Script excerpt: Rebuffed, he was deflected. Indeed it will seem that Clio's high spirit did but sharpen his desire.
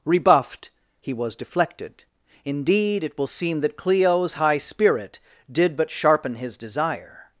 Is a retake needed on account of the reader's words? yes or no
no